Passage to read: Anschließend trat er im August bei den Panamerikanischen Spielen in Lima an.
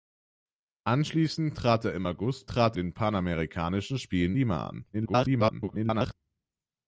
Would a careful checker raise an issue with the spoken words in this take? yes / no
yes